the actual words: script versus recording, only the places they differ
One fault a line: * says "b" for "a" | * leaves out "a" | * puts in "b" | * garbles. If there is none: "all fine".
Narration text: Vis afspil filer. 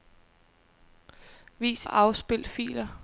all fine